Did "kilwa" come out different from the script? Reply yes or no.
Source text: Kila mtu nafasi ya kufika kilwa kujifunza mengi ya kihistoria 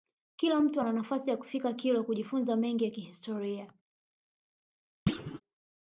no